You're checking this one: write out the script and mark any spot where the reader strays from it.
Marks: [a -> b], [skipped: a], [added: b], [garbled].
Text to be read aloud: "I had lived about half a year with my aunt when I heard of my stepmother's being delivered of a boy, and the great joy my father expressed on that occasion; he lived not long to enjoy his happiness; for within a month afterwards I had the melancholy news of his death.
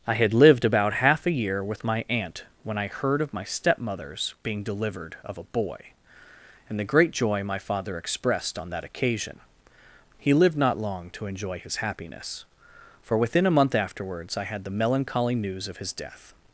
"I had lived about half a year with my aunt when I heard of my stepmother's being delivered of a boy, and the great joy my father expressed on that occasion; he lived not long to enjoy his happiness; for within a month afterwards I had the melancholy news of his death.